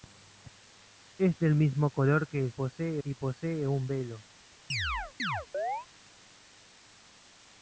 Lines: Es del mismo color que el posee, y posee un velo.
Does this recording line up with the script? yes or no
yes